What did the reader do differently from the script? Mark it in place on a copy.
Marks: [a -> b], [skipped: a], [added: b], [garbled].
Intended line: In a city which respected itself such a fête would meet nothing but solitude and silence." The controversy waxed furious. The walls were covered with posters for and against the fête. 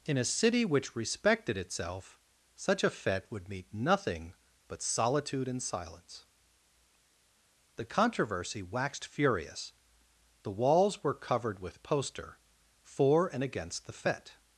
In a city which respected itself such a fête would meet nothing but solitude and silence." The controversy waxed furious. The walls were covered with [posters -> poster] for and against the fête.